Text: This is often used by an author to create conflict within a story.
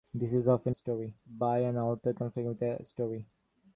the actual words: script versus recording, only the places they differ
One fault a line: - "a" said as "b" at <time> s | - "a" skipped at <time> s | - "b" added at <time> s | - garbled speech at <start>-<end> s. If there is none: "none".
- "used" said as "story" at 0.7 s
- "to create" skipped at 2.1 s